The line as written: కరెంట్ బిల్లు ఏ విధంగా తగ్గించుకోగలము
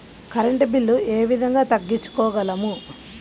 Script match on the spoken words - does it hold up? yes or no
yes